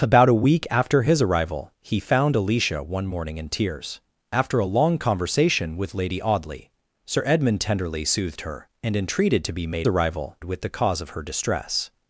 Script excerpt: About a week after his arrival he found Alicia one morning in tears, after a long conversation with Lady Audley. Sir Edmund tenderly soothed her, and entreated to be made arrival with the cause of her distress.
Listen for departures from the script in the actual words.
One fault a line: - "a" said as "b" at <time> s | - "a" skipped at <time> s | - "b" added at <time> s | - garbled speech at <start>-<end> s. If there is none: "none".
none